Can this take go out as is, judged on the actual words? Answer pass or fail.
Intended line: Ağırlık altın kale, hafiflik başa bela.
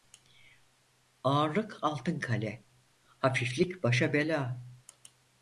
pass